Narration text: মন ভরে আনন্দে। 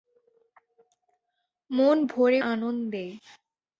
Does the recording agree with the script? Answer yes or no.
yes